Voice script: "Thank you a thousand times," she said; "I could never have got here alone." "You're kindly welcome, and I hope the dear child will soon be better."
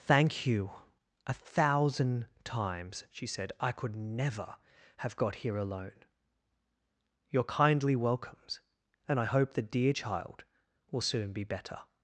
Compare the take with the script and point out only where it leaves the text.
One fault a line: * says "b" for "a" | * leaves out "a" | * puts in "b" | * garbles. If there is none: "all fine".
* says "welcomes" for "welcome"